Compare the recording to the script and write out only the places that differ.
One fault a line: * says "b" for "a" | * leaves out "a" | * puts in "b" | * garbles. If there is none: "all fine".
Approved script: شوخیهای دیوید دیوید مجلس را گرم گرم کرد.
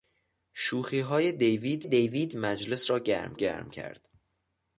all fine